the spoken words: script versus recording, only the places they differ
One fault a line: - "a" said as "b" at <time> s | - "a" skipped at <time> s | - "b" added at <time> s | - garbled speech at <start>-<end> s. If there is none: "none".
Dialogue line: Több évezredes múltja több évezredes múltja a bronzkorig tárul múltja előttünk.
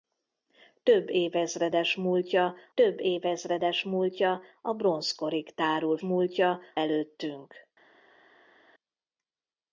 none